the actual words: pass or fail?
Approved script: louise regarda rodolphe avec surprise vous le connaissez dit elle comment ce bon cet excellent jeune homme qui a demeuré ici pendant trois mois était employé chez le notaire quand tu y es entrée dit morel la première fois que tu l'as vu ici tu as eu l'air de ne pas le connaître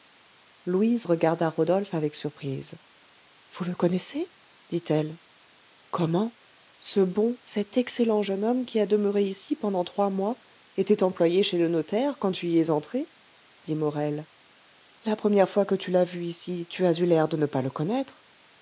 pass